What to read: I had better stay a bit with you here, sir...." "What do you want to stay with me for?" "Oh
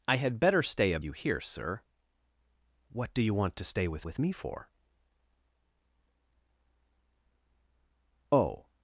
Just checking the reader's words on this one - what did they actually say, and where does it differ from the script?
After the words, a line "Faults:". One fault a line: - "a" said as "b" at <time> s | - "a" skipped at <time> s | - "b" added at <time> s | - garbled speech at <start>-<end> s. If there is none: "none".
I had better stay a you here, sir...." "What do you want to stay with with me for?" "Oh
Faults:
- "bit with" skipped at 1.0 s
- "with" added at 4.0 s